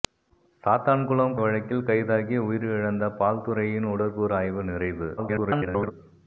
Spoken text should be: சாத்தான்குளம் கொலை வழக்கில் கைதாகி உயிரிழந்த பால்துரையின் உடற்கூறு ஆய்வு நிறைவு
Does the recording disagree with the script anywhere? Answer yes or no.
yes